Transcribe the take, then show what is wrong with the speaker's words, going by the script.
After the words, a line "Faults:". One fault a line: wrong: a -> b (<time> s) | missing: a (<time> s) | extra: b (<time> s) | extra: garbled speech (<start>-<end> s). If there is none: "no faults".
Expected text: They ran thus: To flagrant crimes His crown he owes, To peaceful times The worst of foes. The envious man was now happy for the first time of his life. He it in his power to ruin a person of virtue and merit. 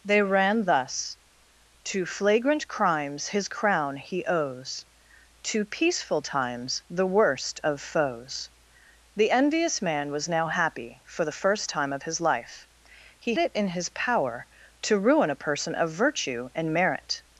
They ran thus: To flagrant crimes His crown he owes, To peaceful times The worst of foes. The envious man was now happy for the first time of his life. He it in his power to ruin a person of virtue and merit.
Faults:
no faults